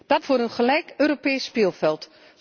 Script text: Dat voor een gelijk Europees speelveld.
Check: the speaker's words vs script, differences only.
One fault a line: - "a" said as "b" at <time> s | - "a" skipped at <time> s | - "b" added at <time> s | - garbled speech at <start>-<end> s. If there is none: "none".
none